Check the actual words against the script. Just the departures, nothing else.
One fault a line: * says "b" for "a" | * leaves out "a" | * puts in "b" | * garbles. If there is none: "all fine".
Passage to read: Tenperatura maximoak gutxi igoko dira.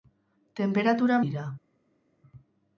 * leaves out "maximoak gutxi igoko"